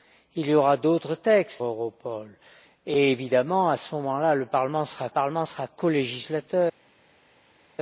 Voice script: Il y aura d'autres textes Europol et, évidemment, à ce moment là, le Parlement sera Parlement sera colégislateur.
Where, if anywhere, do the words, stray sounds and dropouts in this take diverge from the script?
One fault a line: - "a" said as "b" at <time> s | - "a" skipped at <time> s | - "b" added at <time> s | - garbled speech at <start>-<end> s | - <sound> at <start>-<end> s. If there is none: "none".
none